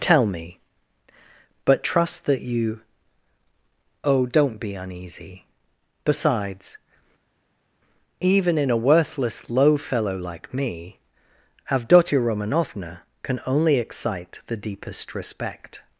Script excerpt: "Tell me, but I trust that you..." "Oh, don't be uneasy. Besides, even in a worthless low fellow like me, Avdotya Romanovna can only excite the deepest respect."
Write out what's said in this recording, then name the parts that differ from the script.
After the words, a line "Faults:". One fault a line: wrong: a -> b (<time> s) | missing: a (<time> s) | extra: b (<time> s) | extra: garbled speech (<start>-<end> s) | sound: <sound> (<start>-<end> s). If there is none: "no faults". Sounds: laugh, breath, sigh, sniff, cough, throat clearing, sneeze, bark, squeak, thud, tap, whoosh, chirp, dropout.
"Tell me, but trust that you..." "Oh, don't be uneasy. Besides, even in a worthless low fellow like me, Avdotya Romanovna can only excite the deepest respect."
Faults:
missing: I (1.8 s)